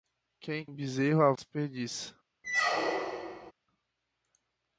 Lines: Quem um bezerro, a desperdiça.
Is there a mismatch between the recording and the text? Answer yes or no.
no